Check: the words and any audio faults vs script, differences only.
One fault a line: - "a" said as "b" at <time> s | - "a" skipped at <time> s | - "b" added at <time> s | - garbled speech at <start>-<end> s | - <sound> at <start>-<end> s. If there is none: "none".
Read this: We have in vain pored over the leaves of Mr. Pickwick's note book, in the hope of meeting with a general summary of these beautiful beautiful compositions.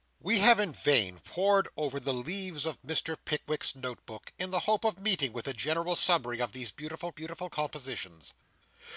none